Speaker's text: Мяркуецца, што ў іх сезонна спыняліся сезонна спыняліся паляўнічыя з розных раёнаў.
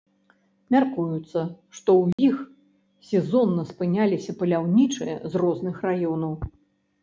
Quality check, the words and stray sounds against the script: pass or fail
fail